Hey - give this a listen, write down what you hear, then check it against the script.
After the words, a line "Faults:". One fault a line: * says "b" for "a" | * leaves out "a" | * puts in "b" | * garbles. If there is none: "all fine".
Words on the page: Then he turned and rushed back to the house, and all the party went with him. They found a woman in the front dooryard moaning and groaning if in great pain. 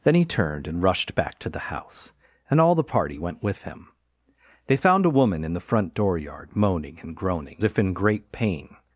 Then he turned and rushed back to the house, and all the party went with him. They found a woman in the front dooryard moaning and groaning if in great pain.
Faults:
all fine